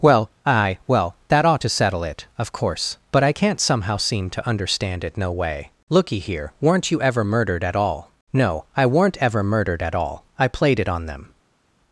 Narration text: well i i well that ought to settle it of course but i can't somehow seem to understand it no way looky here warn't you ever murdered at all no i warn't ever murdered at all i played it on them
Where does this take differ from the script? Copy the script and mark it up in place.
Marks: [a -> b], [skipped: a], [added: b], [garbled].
well [i i -> aye] well that ought to settle it of course but i can't somehow seem to understand it no way looky here [warn't -> weren't] you ever murdered at all no i [warn't -> weren't] ever murdered at all i played it on them